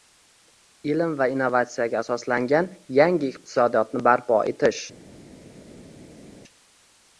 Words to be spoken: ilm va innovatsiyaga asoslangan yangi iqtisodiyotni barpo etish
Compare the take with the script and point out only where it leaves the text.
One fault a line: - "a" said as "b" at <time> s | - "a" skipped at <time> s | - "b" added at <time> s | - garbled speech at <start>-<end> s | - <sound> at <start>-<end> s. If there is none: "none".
none